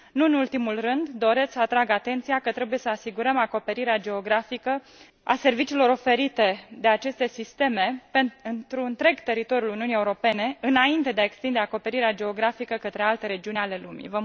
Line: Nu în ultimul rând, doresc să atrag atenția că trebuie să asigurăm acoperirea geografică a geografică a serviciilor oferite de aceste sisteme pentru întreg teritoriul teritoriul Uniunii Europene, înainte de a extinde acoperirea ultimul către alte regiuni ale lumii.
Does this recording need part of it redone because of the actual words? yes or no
yes